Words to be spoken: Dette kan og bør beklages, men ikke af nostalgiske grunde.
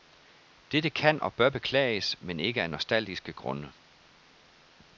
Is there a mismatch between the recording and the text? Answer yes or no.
no